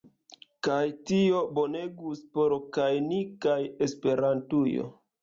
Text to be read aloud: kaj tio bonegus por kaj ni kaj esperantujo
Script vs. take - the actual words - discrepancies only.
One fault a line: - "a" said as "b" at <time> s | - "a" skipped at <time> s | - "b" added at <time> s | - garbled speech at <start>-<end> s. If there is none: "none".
none